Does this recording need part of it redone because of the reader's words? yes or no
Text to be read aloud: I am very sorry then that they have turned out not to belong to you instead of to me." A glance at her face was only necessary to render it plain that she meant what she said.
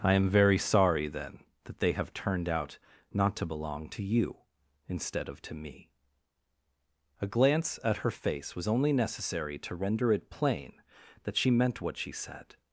no